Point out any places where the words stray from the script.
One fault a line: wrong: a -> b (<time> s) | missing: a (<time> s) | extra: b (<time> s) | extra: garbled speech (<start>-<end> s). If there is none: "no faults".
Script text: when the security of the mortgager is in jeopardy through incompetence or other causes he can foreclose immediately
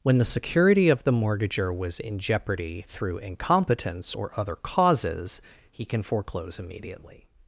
wrong: is -> was (1.8 s)